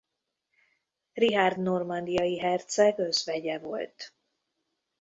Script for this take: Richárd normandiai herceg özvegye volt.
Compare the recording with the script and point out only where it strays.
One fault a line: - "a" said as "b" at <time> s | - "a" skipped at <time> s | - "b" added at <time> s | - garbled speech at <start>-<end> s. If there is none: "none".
none